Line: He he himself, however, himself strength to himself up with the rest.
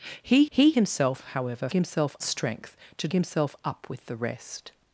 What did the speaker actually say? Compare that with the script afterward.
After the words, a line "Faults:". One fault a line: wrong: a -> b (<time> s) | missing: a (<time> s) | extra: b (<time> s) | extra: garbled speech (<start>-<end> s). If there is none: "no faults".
He he himself, however, himself strength to himself up with the rest.
Faults:
no faults